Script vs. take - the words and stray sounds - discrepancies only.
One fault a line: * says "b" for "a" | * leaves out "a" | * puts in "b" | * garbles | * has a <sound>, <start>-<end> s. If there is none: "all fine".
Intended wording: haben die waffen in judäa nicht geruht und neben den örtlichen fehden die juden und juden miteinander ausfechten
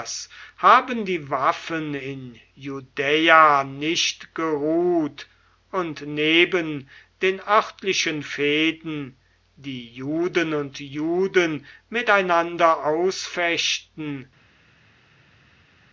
all fine